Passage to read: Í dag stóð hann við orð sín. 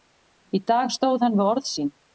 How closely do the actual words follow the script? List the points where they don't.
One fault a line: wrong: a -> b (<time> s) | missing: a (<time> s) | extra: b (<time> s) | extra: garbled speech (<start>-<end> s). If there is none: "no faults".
no faults